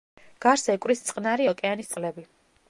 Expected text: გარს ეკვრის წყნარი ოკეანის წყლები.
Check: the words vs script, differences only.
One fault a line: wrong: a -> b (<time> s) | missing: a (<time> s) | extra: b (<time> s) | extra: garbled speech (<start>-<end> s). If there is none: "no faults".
no faults